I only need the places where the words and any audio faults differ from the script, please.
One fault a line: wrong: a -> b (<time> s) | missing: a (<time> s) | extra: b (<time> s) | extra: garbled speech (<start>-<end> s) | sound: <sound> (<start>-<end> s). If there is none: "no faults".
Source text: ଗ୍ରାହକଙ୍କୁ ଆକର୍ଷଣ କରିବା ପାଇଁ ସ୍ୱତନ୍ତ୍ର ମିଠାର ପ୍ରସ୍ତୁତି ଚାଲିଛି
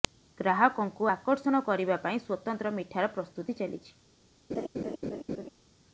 sound: laugh (4.5-5.5 s)